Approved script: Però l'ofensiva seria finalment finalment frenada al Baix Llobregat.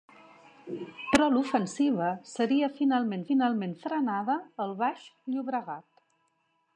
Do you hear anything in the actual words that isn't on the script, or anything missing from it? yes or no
no